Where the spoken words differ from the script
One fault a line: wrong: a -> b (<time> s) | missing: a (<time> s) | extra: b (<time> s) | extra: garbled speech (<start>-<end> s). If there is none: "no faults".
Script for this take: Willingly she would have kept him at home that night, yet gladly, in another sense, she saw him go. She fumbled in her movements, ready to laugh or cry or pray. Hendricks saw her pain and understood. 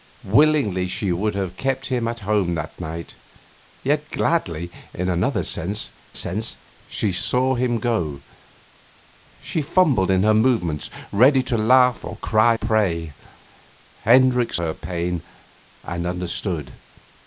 extra: sense (6.1 s)
missing: or (12.6 s)
missing: saw (14.6 s)